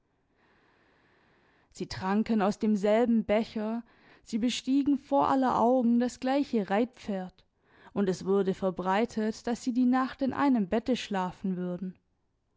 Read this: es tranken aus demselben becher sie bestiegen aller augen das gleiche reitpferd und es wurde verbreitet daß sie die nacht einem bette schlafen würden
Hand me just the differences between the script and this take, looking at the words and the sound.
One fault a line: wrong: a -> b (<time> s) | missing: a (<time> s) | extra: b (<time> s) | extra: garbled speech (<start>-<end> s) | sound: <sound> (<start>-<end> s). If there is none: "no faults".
wrong: es -> sie (1.7 s)
extra: vor (5.0 s)
extra: in (10.2 s)